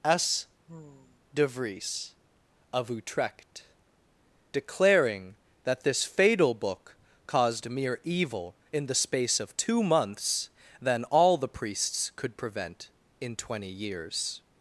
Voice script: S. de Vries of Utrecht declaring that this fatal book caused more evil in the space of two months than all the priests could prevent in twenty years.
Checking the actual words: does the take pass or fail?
fail